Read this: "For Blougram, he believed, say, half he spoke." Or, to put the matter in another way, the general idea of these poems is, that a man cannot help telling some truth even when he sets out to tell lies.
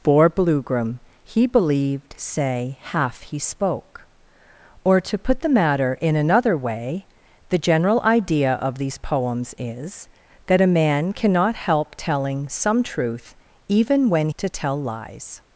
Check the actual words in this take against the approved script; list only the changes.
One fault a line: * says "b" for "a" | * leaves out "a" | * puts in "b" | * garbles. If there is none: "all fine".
* leaves out "he sets out"